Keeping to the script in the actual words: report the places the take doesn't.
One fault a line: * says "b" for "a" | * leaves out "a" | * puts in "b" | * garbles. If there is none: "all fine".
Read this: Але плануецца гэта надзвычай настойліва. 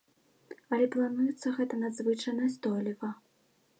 all fine